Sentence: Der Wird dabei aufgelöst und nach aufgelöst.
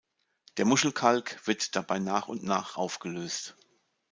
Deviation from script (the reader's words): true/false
true